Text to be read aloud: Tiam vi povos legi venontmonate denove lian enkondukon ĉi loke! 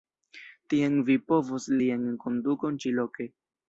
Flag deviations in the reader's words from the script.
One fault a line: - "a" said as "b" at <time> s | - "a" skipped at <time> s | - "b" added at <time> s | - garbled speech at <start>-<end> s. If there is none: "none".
- "legi venontmonate denove" skipped at 1.7 s